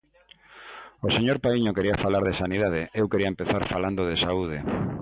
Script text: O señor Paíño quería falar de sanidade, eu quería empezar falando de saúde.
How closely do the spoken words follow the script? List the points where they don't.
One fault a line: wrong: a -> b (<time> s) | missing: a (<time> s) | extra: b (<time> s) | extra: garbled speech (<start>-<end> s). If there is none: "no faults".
no faults